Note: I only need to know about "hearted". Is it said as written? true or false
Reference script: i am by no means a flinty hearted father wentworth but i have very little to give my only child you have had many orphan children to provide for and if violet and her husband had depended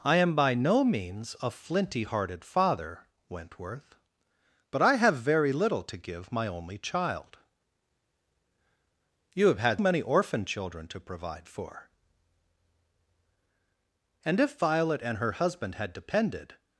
true